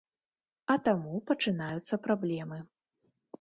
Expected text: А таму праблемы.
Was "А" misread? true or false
false